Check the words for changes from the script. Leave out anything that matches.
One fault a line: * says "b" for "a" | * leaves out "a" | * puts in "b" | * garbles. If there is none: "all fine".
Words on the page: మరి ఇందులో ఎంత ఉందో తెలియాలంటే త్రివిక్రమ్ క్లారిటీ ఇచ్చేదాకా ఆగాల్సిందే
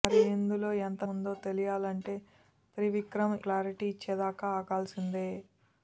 all fine